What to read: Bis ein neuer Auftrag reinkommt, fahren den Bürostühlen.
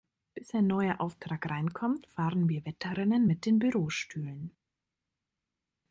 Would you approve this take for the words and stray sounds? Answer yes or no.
no